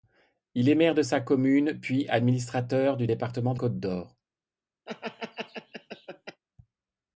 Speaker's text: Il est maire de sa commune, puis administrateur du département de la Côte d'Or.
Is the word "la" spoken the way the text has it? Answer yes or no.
no